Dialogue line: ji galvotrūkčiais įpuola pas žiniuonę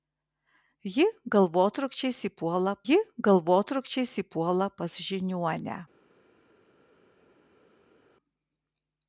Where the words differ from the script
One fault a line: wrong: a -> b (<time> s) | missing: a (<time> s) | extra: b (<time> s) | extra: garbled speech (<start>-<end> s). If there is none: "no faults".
extra: ji galvotrūkčiais įpuola (2.9 s)